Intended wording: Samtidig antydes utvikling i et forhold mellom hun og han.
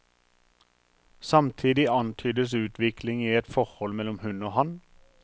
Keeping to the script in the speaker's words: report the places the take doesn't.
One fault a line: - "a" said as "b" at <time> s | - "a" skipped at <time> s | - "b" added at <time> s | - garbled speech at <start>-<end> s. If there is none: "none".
none